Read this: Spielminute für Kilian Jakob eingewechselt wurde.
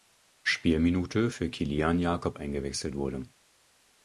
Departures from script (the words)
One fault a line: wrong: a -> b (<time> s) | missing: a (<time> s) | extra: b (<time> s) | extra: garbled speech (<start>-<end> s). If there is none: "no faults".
no faults